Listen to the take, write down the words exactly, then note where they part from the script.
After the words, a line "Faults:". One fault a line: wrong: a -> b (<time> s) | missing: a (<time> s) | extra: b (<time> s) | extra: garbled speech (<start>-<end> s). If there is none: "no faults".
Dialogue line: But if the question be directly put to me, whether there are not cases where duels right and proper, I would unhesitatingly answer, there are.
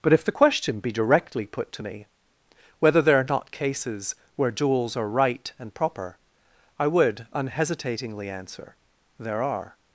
But if the question be directly put to me, whether there are not cases where duels are right and proper, I would unhesitatingly answer, there are.
Faults:
extra: are (5.0 s)